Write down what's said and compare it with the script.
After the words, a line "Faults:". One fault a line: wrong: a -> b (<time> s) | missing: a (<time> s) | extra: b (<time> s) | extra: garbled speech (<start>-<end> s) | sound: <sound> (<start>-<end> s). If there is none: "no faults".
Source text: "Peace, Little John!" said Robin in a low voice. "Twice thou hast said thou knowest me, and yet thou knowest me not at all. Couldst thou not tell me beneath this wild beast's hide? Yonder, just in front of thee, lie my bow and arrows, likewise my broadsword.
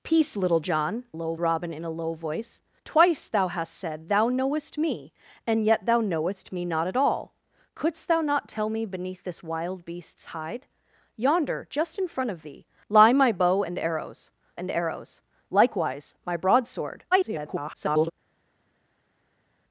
"Peace, Little John!" low Robin in a low voice. "Twice thou hast said thou knowest me, and yet thou knowest me not at all. Couldst thou not tell me beneath this wild beast's hide? Yonder, just in front of thee, lie my bow and arrows and arrows, likewise my broadsword. [garbled]
Faults:
wrong: said -> low (1.1 s)
extra: and arrows (14.5 s)
extra: garbled speech (17.1-18.1 s)